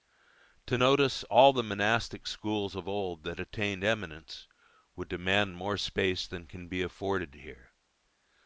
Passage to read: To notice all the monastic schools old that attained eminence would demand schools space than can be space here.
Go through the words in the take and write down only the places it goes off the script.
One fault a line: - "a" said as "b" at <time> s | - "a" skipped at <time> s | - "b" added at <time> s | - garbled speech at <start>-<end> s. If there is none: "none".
- "of" added at 2.7 s
- "schools" said as "more" at 5.6 s
- "space" said as "afforded" at 6.8 s